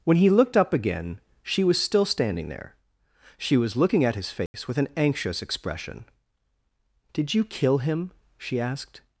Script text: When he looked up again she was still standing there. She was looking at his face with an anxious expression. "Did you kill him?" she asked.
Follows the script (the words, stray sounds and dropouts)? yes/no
no